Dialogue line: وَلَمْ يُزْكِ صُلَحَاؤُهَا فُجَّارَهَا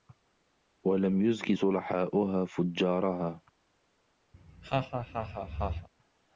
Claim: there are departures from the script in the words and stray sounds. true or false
true